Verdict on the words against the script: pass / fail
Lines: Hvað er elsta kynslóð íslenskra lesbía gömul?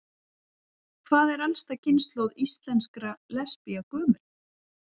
pass